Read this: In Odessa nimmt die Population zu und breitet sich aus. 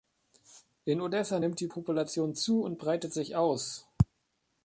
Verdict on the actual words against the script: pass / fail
pass